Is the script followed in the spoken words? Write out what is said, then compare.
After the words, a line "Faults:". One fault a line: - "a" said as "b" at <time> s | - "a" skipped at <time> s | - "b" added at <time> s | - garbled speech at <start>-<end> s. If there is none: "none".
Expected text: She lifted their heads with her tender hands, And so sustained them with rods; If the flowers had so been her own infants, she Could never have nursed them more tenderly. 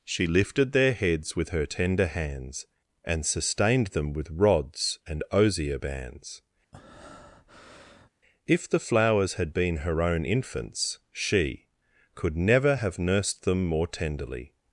She lifted their heads with her tender hands, And sustained them with rods and osier bands; If the flowers had been her own infants, she Could never have nursed them more tenderly.
Faults:
- "so" skipped at 3.2 s
- "and osier bands" added at 5.1 s
- "so" skipped at 9.5 s